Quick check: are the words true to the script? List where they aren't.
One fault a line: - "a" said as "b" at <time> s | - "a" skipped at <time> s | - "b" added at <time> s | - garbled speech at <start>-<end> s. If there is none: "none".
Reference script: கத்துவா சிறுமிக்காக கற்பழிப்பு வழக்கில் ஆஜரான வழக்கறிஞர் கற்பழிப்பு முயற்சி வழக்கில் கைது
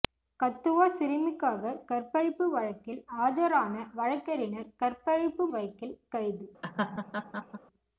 - "முயற்சி" skipped at 5.5 s